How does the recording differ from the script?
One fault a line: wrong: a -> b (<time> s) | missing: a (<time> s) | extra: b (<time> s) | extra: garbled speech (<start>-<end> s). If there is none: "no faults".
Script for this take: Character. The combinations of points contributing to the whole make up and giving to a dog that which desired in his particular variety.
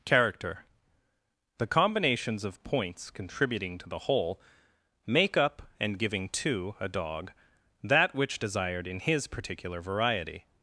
no faults